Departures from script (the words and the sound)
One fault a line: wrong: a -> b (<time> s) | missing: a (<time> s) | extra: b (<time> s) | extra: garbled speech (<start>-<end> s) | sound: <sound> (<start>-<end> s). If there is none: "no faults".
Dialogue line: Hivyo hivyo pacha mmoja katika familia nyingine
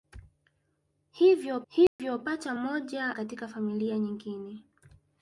sound: dropout (1.9-2.0 s)